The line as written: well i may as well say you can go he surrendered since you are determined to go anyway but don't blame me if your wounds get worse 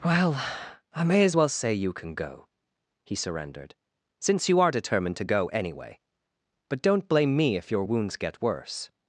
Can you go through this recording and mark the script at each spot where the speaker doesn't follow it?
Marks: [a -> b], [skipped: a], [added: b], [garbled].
well i may as well say you can go he surrendered since you are determined to go anyway but don't blame me if your wounds get worse